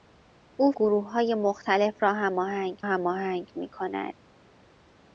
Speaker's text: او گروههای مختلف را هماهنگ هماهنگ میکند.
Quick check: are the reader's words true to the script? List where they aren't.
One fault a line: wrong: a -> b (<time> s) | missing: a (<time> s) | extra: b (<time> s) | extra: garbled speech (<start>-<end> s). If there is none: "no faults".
no faults